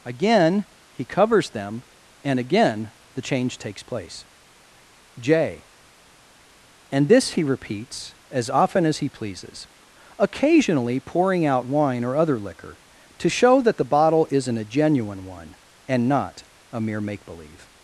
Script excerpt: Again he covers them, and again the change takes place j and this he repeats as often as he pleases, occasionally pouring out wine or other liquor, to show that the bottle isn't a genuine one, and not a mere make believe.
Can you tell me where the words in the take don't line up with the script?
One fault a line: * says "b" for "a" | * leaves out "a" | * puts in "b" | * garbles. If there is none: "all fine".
all fine